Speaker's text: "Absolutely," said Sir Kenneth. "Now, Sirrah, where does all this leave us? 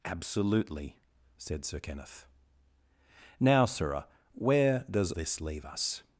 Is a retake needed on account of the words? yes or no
yes